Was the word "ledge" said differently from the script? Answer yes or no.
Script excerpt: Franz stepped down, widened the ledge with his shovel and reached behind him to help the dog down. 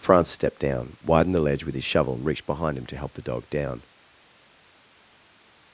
no